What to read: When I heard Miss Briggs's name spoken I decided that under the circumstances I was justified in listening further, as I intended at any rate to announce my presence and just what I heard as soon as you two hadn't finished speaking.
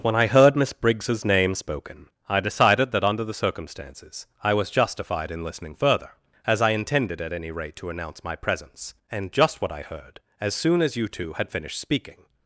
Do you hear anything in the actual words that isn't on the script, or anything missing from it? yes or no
yes